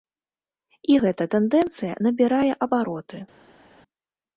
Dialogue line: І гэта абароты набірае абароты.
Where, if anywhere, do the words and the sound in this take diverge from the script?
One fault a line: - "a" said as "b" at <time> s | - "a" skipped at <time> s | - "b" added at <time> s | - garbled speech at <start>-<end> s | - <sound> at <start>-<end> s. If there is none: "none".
- "абароты" said as "тэндэнцыя" at 1.3 s